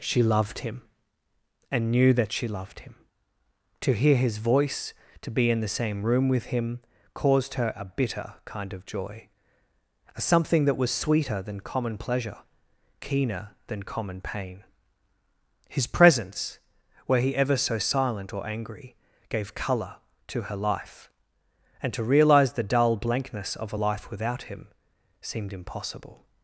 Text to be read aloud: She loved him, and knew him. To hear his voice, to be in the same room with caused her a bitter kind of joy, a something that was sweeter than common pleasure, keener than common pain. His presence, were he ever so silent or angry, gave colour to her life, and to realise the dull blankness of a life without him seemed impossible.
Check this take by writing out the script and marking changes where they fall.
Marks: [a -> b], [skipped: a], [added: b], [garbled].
She loved him, and knew [added: that she loved] him. To hear his voice, to be in the same room with [added: him] caused her a bitter kind of joy, a something that was sweeter than common pleasure, keener than common pain. His presence, were he ever so silent or angry, gave colour to her life, and to realise the dull blankness of a life without him seemed impossible.